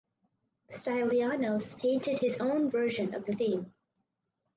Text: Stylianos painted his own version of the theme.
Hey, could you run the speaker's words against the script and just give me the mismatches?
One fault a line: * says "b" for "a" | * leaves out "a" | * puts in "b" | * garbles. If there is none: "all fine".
all fine